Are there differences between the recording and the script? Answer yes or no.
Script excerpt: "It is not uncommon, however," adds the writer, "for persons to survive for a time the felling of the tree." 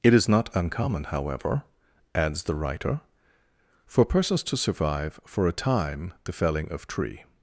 yes